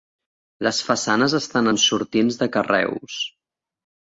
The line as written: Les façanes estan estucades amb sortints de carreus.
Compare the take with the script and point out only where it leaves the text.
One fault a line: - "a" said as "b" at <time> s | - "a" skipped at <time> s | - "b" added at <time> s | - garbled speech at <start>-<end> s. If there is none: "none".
- "estucades" skipped at 1.7 s